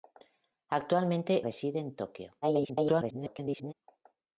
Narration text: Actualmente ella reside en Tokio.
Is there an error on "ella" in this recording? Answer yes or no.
yes